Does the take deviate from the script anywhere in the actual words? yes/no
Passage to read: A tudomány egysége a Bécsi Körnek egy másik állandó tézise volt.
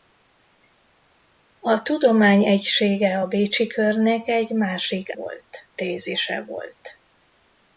yes